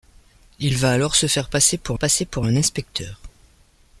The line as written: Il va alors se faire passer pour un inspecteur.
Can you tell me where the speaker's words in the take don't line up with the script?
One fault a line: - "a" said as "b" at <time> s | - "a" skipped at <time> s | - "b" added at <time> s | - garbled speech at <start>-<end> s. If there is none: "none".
- "passer pour" added at 2.0 s